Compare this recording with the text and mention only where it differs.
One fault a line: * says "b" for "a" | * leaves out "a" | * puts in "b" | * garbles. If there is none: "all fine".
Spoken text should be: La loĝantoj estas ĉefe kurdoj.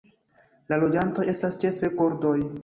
all fine